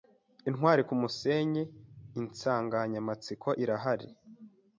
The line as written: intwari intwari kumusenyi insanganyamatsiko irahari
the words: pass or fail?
fail